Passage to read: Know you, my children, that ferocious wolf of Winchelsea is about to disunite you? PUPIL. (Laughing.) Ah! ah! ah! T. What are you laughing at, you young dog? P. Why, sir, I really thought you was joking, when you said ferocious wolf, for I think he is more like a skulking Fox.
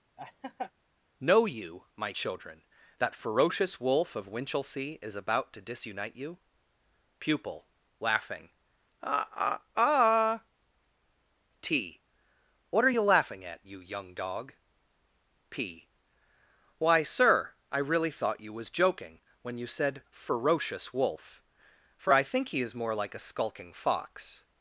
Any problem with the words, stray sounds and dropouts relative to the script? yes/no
yes